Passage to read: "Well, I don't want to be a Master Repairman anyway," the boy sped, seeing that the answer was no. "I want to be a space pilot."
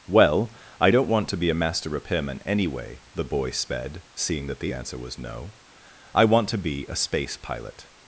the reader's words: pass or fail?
pass